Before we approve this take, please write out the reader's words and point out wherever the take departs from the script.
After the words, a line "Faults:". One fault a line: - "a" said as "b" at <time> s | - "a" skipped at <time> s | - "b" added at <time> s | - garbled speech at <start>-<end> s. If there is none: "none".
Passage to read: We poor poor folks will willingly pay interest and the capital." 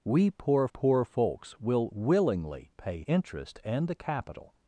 We poor poor folks will willingly pay interest and the capital."
Faults:
none